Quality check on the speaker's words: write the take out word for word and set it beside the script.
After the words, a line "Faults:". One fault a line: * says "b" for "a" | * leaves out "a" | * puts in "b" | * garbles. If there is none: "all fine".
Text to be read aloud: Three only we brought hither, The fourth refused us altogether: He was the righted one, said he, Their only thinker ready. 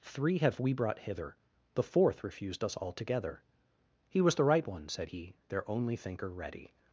Three have we brought hither, The fourth refused us altogether: He was the right one, said he, Their only thinker ready.
Faults:
* says "have" for "only"
* says "right" for "righted"